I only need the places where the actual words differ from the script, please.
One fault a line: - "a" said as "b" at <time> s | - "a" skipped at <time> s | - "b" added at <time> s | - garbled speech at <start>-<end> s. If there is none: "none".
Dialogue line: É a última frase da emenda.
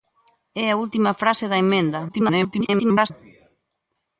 - garbled speech at 2.1-3.1 s